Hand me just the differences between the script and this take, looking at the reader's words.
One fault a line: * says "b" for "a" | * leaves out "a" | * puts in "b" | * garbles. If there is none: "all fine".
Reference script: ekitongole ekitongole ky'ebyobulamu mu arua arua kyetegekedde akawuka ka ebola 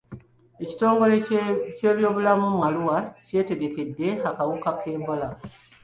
* leaves out "ekitongole"
* leaves out "arua"